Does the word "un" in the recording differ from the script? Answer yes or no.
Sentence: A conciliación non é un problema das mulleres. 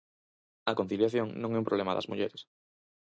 no